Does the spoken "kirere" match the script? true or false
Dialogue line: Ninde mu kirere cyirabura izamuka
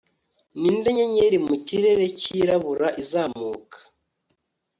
true